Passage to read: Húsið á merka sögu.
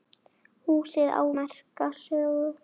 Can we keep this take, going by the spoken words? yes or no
yes